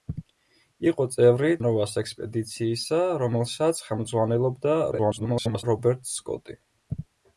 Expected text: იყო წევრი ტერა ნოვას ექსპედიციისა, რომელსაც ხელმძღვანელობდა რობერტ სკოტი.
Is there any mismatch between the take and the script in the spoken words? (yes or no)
yes